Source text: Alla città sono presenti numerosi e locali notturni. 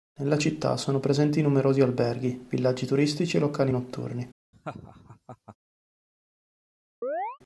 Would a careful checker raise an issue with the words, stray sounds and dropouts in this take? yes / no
yes